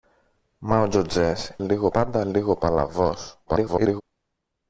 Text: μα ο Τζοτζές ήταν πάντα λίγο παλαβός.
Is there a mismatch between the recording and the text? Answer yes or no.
yes